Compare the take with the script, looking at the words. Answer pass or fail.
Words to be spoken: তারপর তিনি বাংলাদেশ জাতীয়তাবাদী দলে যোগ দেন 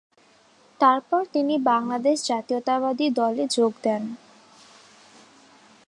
pass